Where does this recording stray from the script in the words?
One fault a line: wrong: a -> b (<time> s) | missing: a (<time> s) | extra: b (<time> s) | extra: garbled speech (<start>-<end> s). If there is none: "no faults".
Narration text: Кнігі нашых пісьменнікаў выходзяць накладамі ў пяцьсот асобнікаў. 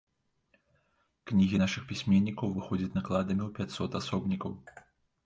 no faults